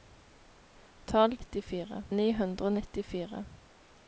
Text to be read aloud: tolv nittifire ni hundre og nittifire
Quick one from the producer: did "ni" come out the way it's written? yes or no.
yes